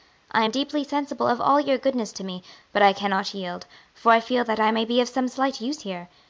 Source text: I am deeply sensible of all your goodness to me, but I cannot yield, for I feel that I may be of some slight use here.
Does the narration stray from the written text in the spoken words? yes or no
no